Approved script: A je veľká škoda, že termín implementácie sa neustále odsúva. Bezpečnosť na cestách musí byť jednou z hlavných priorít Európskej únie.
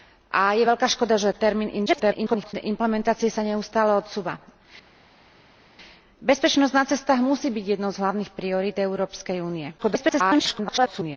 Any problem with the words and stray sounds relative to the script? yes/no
yes